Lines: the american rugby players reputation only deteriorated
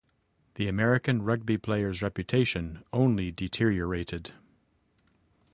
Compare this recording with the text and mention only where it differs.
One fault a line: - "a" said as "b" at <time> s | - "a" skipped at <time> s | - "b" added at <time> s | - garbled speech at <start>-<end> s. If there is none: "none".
none